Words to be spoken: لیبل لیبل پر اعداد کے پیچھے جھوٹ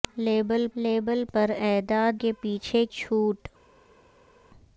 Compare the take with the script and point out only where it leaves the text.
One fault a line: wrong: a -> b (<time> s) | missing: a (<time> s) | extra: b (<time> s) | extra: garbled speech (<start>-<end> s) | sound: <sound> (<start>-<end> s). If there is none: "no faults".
no faults